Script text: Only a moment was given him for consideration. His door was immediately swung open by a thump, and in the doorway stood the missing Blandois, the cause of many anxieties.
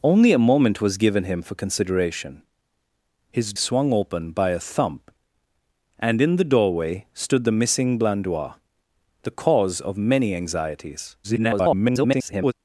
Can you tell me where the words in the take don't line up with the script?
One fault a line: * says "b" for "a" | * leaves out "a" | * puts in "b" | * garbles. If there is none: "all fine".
* leaves out "door was immediately"
* garbles